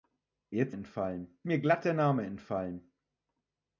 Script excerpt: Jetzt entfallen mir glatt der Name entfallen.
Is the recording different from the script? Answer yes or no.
no